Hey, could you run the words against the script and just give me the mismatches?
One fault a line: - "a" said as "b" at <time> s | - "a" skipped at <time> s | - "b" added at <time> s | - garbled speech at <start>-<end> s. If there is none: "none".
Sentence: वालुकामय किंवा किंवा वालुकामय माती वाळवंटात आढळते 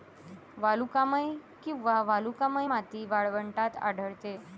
- "किंवा" skipped at 2.0 s